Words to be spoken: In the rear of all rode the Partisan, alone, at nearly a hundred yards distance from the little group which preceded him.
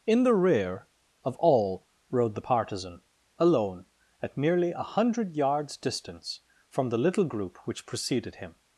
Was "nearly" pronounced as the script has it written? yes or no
no